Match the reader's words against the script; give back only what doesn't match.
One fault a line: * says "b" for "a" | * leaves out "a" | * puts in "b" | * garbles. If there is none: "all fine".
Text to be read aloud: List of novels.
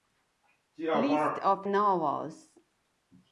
all fine